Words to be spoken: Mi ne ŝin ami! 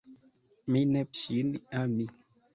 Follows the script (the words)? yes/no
yes